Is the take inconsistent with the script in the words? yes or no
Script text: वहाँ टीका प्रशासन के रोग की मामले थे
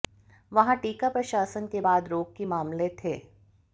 yes